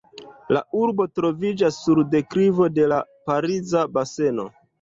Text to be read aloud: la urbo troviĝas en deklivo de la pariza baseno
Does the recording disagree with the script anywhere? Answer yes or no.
yes